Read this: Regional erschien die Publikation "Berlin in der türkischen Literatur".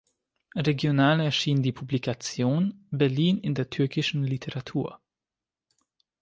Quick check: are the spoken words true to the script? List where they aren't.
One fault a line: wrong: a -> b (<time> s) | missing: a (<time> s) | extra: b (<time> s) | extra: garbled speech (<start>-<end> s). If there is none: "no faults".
no faults